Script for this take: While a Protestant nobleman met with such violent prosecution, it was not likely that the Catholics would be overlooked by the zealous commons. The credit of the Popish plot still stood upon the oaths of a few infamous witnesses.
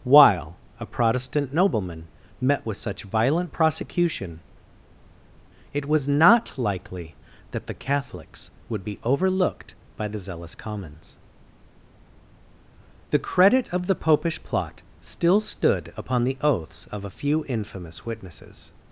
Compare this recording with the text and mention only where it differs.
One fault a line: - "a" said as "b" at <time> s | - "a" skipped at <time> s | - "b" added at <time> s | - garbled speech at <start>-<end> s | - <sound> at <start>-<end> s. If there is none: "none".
none